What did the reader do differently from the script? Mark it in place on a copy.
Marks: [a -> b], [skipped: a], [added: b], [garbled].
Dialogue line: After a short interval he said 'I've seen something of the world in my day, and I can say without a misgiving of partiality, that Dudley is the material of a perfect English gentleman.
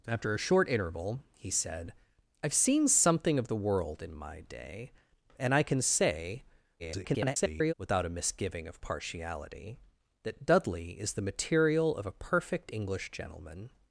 After a short interval he said 'I've seen something of the world in my day, and I can say [garbled] without a misgiving of partiality, that Dudley is the material of a perfect English gentleman.